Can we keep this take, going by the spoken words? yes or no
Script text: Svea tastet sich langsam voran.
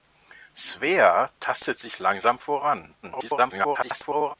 no